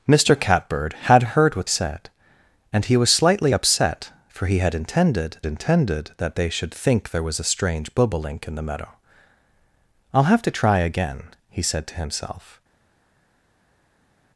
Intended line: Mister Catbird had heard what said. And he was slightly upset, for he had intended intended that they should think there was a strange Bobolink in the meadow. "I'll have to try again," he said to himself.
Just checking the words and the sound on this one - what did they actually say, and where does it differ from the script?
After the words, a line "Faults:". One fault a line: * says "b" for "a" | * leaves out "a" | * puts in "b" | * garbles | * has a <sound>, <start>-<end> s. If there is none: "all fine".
Mister Catbird had heard what said. And he was slightly upset, for he had intended intended that they should think there was a strange Bobolink in the meadow. "I'll have to try again," he said to himself.
Faults:
all fine